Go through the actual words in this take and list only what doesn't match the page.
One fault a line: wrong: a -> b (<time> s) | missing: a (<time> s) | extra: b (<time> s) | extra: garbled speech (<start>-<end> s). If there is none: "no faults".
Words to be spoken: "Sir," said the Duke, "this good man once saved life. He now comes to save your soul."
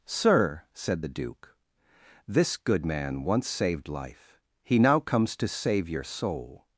no faults